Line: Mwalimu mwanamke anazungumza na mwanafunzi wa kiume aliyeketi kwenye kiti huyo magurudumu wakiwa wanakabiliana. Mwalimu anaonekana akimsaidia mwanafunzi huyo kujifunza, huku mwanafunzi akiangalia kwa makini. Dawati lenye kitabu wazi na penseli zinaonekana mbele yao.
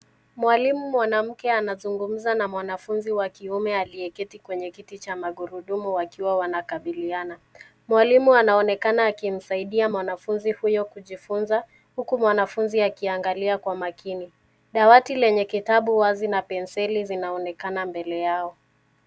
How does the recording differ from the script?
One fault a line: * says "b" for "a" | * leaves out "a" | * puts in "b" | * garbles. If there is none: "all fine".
* says "cha" for "huyo"